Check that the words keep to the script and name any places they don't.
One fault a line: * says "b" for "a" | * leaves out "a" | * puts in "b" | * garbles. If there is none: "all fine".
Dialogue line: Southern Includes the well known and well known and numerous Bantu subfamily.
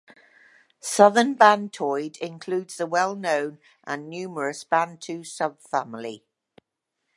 * puts in "Bantoid"
* leaves out "well known and"